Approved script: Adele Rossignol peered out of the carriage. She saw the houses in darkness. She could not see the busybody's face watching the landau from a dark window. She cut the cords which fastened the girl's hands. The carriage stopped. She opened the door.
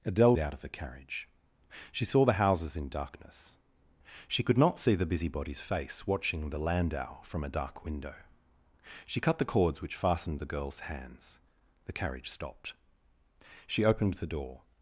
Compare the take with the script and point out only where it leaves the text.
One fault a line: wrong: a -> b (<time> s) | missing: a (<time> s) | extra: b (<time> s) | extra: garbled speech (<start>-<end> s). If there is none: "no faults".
missing: Rossignol peered (0.3 s)